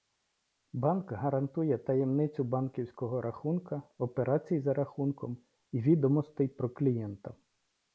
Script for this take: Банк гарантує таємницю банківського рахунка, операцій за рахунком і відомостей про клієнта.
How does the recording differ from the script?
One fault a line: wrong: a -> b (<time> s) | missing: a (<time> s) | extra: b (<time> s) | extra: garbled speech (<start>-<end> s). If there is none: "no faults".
no faults